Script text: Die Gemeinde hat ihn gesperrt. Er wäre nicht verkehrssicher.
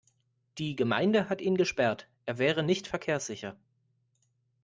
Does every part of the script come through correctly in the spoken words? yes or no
yes